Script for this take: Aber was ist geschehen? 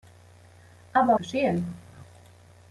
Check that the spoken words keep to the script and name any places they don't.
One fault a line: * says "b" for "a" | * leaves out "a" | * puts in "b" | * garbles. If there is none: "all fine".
* leaves out "was ist"